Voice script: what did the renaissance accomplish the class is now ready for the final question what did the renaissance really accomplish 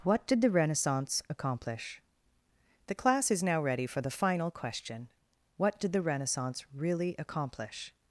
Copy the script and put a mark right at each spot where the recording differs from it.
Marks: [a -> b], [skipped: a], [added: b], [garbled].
what did the renaissance accomplish the class is now ready for the final question what did the renaissance really accomplish